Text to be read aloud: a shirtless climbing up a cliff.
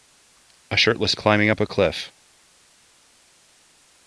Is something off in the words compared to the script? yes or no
no